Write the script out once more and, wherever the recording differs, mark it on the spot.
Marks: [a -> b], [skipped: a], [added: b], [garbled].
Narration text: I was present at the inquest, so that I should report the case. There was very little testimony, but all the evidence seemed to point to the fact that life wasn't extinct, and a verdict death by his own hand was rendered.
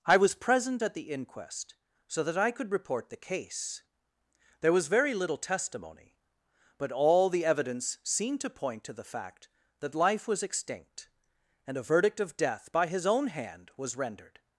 I was present at the inquest, so that I [should -> could] report the case. There was very little testimony, but all the evidence seemed to point to the fact that life [wasn't -> was] extinct, and a verdict [added: of] death by his own hand was rendered.